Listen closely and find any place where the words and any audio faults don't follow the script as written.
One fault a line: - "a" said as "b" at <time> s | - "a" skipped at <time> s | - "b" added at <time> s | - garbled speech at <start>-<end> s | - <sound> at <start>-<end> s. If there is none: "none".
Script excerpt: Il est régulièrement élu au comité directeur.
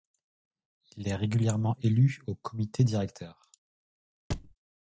- thud at 4.3-4.6 s